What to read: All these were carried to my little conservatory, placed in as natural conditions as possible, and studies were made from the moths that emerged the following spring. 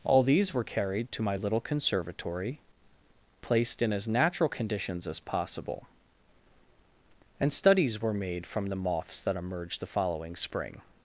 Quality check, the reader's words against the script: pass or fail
pass